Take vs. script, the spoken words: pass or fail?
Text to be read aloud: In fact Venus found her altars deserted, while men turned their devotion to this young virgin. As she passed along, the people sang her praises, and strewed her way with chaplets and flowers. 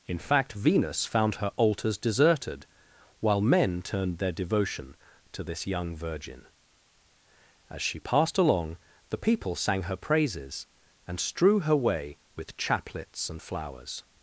fail